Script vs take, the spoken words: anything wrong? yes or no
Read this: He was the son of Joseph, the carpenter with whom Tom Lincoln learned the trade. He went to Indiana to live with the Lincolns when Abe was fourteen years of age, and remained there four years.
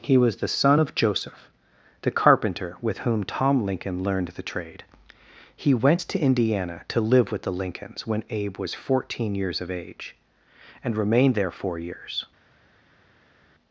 no